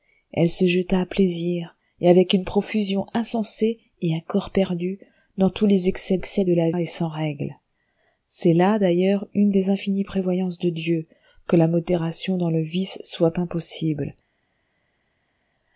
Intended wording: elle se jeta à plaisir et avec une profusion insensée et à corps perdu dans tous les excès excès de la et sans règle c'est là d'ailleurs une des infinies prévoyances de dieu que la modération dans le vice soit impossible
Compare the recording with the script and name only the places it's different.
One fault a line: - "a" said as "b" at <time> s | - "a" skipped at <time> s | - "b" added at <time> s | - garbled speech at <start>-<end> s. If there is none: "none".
none